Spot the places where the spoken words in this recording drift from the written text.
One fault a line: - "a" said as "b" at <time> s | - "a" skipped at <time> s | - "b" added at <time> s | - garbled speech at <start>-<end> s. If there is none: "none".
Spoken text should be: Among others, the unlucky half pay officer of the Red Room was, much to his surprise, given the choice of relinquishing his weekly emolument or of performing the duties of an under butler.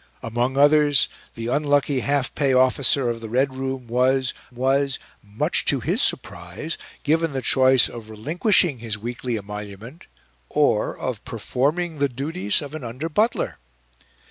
- "was" added at 4.5 s